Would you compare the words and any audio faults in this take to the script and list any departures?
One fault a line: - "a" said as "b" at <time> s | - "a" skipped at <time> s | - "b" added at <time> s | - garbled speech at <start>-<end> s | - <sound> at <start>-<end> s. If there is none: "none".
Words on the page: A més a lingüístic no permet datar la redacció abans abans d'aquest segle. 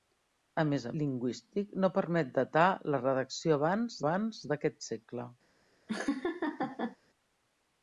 - laugh at 5.9-7.0 s